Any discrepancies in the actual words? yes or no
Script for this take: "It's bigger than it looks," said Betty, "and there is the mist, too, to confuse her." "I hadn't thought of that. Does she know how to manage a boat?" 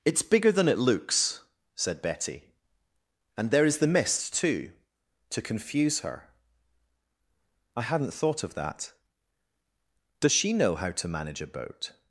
no